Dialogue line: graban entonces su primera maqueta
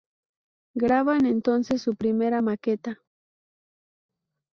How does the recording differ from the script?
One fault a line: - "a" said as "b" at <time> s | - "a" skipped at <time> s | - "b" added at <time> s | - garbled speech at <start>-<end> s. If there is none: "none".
none